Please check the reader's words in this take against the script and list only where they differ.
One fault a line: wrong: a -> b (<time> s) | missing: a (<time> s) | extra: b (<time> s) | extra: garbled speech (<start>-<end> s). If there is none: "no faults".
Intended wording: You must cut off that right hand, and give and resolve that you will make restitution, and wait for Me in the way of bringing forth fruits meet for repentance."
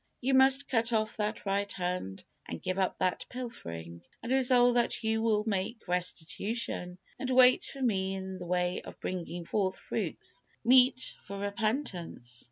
extra: up that pilfering (2.8 s)